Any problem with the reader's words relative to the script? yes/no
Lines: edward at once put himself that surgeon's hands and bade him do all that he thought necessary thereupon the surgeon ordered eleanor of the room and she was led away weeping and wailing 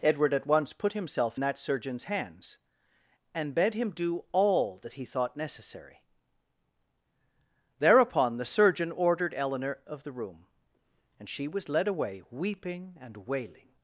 no